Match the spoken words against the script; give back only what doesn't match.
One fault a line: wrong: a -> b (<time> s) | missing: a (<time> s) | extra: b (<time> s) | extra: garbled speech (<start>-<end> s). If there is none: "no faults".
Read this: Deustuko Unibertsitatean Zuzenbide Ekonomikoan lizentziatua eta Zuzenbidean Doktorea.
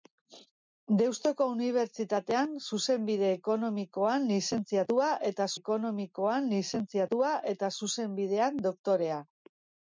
extra: Ekonomikoan lizentziatua eta (5.6 s)